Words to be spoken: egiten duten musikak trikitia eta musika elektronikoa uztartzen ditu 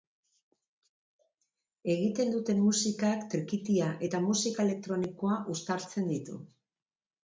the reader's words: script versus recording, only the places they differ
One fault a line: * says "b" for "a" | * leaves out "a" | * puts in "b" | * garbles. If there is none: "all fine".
all fine